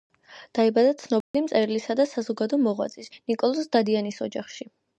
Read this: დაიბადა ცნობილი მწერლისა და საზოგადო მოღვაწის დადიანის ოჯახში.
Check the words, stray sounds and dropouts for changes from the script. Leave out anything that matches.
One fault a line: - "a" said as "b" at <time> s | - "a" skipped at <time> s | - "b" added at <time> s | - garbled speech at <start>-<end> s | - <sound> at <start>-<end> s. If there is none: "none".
- dropout at 1.2-1.3 s
- "ნიკოლოზ" added at 3.1 s